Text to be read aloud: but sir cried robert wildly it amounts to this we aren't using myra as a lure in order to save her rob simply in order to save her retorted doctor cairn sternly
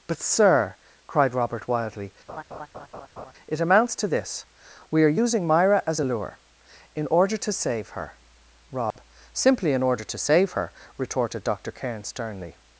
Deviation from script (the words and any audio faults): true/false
true